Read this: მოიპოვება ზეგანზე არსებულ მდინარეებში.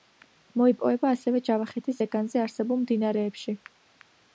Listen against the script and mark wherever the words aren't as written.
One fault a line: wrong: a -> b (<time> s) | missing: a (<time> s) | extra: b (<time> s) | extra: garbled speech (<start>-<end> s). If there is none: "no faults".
extra: ასევე ჯავახეთის (1.2 s)